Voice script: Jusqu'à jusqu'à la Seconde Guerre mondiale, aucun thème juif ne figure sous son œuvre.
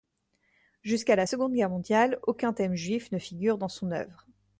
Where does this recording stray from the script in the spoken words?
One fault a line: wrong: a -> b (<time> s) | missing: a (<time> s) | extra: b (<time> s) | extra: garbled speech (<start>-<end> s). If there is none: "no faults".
missing: jusqu'à (1.1 s)
wrong: sous -> dans (3.6 s)